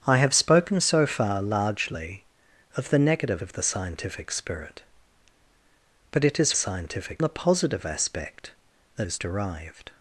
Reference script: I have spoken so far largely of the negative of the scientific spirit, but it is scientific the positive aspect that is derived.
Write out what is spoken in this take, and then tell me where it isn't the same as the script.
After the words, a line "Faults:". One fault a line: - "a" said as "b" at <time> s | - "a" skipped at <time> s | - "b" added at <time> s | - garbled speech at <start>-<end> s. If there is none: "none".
I have spoken so far largely of the negative of the scientific spirit, but it is scientific the positive aspect that is derived.
Faults:
none